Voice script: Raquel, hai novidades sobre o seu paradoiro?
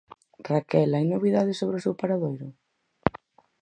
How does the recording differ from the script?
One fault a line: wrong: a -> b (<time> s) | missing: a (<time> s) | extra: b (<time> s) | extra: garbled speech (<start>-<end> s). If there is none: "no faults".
no faults